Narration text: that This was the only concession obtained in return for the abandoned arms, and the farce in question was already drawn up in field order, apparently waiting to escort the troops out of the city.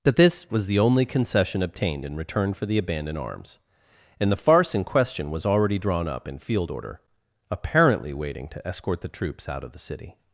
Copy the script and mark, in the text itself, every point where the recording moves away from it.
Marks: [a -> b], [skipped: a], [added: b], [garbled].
that This was the only concession obtained in return for the abandoned arms, and the farce in question was already drawn up in field order, apparently waiting to escort the troops out of the city.